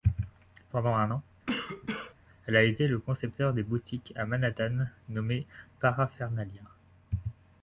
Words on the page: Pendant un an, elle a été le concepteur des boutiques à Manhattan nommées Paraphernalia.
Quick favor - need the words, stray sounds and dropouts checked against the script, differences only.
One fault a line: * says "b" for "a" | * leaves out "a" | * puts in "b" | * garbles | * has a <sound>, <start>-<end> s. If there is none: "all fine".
* has a cough, 1.5-2.1 s